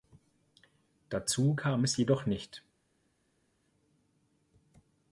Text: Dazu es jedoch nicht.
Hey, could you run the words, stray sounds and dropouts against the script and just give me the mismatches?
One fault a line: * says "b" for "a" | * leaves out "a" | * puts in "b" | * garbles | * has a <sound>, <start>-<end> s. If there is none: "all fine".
* puts in "kam"